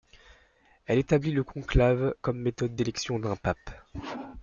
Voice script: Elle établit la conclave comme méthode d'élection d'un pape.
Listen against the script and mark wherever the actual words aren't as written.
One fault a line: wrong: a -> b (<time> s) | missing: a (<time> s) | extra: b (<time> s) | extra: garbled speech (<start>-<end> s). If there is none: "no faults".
wrong: la -> le (1.3 s)